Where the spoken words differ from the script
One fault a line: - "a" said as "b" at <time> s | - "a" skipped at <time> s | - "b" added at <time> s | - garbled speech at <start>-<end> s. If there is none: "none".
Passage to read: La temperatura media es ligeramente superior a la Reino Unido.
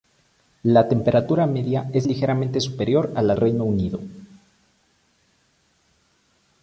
none